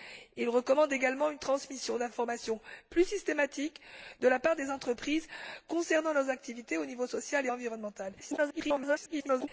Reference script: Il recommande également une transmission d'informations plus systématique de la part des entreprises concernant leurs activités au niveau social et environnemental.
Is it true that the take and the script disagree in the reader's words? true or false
true